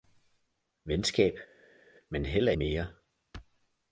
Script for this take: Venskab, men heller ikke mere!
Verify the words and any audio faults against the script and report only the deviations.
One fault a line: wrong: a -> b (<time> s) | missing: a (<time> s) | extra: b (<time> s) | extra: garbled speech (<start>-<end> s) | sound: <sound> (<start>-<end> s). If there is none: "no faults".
missing: ikke (2.5 s)